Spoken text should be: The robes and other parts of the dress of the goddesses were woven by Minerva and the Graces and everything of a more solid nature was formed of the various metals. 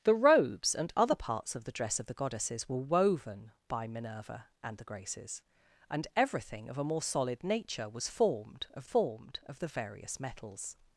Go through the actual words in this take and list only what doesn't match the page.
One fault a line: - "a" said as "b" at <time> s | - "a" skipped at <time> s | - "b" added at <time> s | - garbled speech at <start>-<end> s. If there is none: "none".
- "formed of" added at 8.8 s